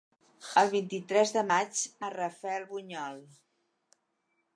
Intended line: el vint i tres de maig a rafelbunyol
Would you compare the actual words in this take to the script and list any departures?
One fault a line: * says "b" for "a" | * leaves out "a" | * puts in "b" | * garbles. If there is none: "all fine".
all fine